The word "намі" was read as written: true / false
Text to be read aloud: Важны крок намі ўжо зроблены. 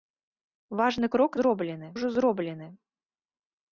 false